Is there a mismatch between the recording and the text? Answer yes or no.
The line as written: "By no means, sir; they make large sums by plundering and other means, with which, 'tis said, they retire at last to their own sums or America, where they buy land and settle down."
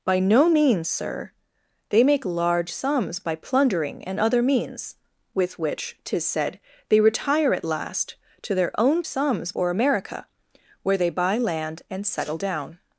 no